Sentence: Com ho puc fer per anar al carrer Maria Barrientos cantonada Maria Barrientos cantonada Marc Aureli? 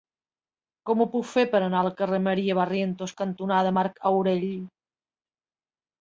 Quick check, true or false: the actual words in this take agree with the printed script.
false